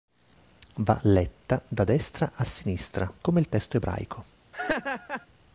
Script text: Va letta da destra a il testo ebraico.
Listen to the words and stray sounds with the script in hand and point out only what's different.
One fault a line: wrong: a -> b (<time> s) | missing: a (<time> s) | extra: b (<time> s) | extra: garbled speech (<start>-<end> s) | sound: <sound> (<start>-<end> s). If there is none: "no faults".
extra: sinistra come (2.5 s)
sound: laugh (4.5-5.3 s)